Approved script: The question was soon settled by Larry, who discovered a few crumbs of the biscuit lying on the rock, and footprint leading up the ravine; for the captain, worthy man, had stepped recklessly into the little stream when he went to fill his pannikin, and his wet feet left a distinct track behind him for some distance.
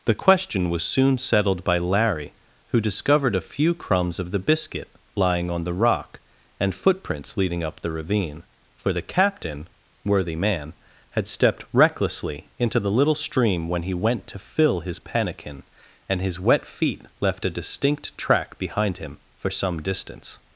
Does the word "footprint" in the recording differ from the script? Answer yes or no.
yes